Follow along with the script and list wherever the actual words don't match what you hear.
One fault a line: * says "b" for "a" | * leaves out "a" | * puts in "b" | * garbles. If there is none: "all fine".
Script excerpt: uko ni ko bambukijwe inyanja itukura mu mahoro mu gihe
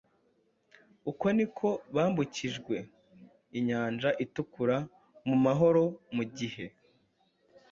all fine